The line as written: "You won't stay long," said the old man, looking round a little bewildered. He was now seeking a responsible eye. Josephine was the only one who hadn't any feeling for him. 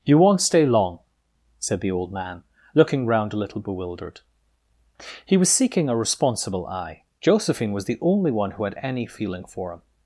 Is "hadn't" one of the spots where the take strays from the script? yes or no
yes